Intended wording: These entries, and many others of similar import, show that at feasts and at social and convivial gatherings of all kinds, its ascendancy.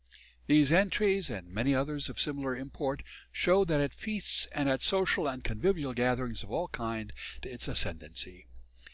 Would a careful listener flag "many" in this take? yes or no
no